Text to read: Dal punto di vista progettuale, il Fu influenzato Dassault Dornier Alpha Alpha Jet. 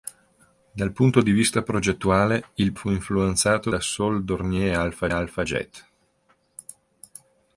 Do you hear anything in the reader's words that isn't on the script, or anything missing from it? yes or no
no